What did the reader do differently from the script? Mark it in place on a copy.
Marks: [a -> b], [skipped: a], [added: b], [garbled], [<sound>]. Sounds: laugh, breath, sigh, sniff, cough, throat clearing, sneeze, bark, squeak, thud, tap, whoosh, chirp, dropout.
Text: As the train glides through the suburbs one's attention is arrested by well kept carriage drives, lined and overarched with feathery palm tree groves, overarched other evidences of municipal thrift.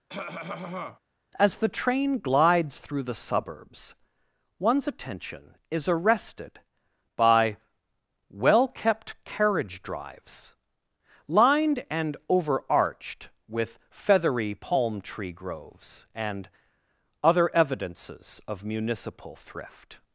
[cough] As the train glides through the suburbs one's attention is arrested by well kept carriage drives, lined and overarched with feathery palm tree groves, [overarched -> and] other evidences of municipal thrift.